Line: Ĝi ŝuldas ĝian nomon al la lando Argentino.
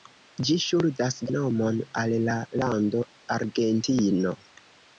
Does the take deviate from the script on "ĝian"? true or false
true